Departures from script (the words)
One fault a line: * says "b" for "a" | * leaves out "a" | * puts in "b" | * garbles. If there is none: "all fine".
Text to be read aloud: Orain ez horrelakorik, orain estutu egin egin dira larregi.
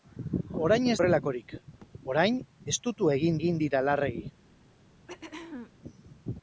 all fine